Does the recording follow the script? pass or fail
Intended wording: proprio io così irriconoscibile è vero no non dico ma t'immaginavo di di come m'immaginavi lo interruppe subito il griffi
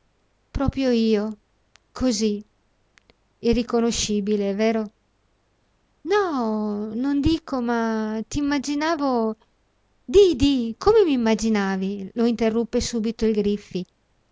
pass